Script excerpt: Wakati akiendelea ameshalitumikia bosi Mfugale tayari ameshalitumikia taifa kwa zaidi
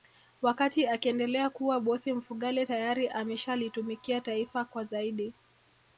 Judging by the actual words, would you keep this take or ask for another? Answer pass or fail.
fail